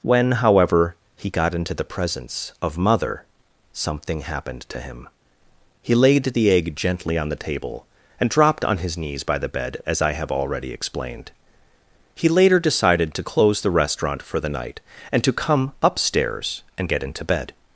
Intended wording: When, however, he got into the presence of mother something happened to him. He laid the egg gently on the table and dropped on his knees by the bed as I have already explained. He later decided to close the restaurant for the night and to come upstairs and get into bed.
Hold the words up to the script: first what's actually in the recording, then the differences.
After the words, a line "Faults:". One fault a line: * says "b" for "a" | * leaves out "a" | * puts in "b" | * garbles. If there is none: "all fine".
When, however, he got into the presence of mother something happened to him. He laid the egg gently on the table and dropped on his knees by the bed as I have already explained. He later decided to close the restaurant for the night and to come upstairs and get into bed.
Faults:
all fine